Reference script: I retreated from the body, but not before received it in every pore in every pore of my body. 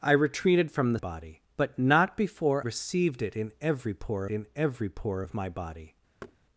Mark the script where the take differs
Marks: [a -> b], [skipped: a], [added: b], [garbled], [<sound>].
I retreated from the body, but not before received it in every pore in every pore of my body. [thud]